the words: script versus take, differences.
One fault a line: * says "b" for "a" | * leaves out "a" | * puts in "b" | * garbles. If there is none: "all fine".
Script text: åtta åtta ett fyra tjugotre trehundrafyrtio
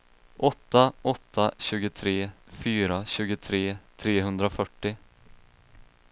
* says "tjugotre" for "ett"